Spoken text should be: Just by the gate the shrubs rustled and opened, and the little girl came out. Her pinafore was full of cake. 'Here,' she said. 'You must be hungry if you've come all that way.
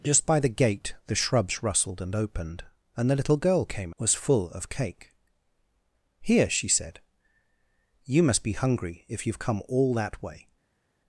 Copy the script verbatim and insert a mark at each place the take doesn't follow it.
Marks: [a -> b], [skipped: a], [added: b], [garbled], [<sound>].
Just by the gate the shrubs rustled and opened, and the little girl came [skipped: out. Her pinafore] was full of cake. 'Here,' she said. 'You must be hungry if you've come all that way.